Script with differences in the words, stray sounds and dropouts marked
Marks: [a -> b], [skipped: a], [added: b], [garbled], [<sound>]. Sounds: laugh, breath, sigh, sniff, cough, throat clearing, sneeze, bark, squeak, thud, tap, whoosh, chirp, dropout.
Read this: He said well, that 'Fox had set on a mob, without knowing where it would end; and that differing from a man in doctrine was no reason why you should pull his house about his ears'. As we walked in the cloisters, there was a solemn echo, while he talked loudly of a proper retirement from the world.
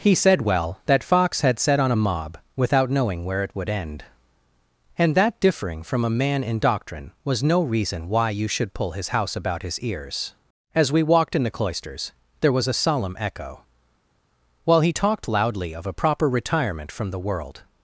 He said well, that 'Fox had set on a mob, without knowing where it would end; and that differing from a man in doctrine was no reason why you should pull his house about his ears'. As we walked in the cloisters, there was a solemn echo, while he talked loudly of a proper retirement from the world.